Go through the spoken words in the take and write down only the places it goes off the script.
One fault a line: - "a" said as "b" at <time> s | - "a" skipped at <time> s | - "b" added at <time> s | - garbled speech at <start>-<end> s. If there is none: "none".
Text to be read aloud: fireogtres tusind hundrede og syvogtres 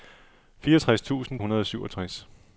none